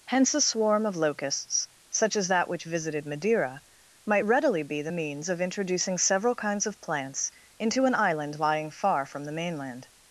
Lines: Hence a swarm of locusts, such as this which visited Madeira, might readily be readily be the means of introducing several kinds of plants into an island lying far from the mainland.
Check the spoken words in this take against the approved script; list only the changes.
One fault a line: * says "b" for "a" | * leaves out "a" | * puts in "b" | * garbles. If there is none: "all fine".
* says "that" for "this"
* leaves out "readily be"